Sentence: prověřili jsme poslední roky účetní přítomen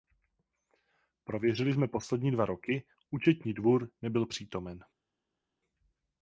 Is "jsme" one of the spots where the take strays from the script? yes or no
no